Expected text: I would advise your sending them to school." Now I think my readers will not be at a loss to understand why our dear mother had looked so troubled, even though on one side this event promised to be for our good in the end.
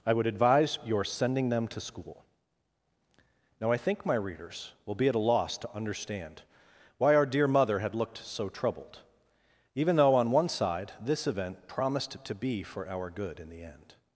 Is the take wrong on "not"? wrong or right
wrong